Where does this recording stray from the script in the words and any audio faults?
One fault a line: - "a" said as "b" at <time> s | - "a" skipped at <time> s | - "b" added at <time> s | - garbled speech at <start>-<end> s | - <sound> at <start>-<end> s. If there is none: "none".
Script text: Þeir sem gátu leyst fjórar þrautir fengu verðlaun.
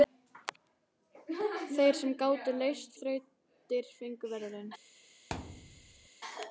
- "fjórar" skipped at 3.0 s
- thud at 5.3-6.1 s